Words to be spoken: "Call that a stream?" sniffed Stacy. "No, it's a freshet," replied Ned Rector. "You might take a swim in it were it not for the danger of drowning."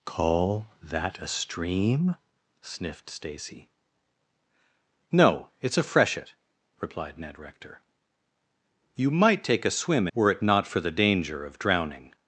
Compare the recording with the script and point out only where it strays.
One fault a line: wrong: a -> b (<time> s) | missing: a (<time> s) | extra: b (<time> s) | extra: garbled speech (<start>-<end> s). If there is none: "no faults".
missing: in it (10.1 s)